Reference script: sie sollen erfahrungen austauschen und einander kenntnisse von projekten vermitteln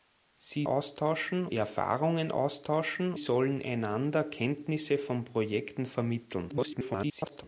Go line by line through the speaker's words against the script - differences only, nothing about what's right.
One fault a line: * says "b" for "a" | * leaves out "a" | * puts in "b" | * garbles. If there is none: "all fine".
* says "austauschen" for "sollen"
* says "sollen" for "und"
* garbles